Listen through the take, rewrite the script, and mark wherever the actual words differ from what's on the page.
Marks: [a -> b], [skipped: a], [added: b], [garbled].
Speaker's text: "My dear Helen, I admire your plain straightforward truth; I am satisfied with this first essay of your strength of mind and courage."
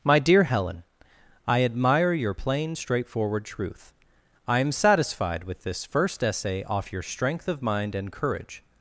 "My dear Helen, I admire your plain straightforward truth; I am satisfied with this first essay [of -> off] your strength of mind and courage."